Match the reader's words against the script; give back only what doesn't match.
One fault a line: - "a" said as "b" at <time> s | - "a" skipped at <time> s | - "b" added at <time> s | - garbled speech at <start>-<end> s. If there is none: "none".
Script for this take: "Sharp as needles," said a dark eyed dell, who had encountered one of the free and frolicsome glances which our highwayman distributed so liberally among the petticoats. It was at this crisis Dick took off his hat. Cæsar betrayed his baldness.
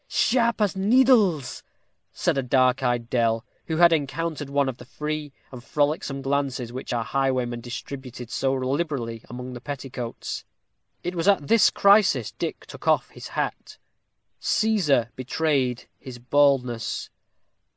none